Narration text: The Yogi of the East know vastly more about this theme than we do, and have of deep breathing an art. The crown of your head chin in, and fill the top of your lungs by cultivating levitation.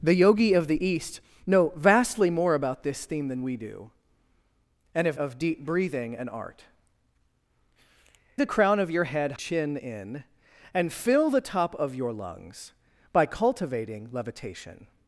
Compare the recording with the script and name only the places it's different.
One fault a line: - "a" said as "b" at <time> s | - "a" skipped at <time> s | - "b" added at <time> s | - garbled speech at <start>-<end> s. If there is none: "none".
none